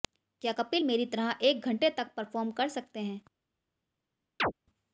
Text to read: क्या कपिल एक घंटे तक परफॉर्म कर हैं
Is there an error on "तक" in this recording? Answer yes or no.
no